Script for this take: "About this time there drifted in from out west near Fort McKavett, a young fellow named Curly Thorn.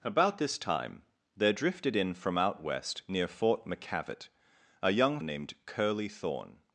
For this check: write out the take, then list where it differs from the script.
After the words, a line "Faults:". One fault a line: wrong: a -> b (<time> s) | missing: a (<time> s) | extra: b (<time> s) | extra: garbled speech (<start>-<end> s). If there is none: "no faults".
"About this time there drifted in from out west near Fort McKavett, a young named Curly Thorn.
Faults:
missing: fellow (5.2 s)